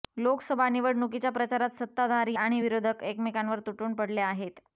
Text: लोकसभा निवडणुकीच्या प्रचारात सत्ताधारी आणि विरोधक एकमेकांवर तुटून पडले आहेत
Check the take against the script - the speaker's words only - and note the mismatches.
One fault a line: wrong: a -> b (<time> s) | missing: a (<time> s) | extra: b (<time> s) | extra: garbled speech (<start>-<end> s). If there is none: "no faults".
no faults